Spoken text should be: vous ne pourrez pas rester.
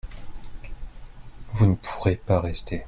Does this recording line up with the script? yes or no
yes